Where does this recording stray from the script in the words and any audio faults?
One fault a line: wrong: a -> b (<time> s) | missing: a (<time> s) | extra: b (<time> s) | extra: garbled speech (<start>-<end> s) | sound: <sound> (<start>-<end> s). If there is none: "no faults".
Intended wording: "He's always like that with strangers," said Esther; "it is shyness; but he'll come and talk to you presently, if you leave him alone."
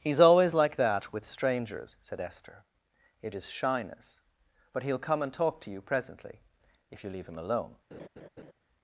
sound: laugh (7.9-8.5 s)